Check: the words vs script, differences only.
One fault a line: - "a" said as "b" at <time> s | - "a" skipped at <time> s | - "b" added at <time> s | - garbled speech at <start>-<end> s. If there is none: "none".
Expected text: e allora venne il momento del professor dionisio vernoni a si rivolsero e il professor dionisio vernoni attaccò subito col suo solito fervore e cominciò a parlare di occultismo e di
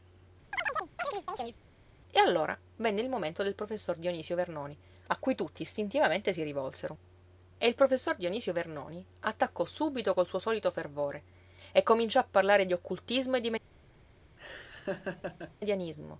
- "cui tutti istintivamente" added at 5.2 s